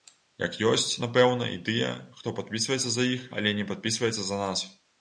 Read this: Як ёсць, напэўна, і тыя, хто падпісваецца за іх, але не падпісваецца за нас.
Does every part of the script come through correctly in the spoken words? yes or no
yes